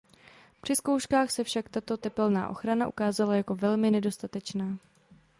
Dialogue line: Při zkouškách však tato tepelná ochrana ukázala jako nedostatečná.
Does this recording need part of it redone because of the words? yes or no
yes